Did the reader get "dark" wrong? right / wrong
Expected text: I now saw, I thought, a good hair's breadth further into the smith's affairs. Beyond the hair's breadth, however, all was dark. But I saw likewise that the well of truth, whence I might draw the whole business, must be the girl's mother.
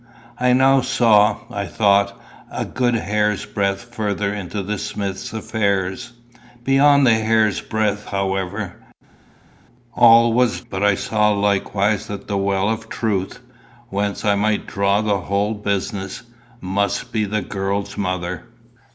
wrong